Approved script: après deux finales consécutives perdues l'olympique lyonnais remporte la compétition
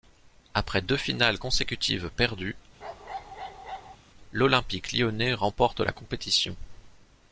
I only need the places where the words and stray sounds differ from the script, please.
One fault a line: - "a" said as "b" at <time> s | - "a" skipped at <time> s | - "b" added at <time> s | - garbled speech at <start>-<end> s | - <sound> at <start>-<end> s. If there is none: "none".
- bark at 2.8-4.0 s